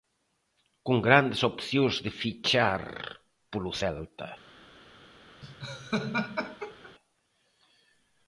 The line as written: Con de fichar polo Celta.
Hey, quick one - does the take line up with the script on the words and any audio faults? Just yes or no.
no